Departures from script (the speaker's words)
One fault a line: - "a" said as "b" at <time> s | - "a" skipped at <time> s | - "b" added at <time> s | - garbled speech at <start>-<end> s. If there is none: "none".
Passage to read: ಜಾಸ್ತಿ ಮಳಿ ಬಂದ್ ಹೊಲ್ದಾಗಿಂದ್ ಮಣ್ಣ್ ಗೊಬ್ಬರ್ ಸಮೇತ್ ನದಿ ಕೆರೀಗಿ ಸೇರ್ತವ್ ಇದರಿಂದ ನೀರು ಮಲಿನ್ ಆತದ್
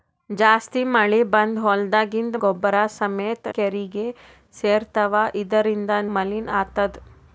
- "ಮಣ್ಣ್" skipped at 2.4 s
- "ನದಿ" skipped at 3.5 s
- "ನೀರು" skipped at 5.9 s